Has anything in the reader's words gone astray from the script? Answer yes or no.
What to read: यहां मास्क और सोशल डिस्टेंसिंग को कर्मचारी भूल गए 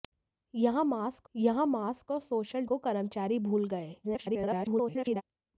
yes